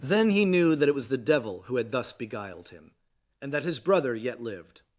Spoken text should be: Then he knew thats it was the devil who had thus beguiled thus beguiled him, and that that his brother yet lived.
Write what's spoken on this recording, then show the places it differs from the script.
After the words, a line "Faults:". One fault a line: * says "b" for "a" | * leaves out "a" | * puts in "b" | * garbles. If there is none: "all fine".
Then he knew that it was the devil who had thus beguiled him, and that his brother yet lived.
Faults:
* says "that" for "thats"
* leaves out "thus beguiled"
* leaves out "that"